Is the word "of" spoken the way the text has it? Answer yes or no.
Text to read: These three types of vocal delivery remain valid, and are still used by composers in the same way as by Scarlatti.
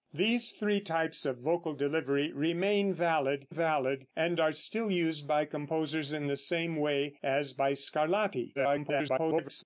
yes